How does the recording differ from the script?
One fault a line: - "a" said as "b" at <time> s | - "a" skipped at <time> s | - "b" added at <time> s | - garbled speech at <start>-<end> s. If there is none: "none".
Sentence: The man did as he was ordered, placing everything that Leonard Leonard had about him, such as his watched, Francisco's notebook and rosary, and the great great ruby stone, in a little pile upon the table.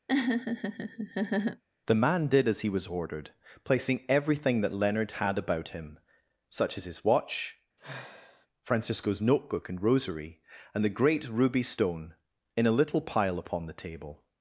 - "Leonard" skipped at 5.1 s
- "watched" said as "watch" at 7.0 s
- "great" skipped at 11.3 s